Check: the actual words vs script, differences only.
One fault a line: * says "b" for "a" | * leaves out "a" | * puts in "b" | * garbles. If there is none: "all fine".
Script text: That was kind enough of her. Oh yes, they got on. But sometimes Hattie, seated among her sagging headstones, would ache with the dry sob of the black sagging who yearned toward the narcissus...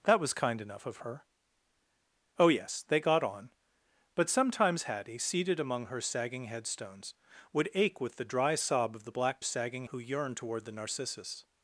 all fine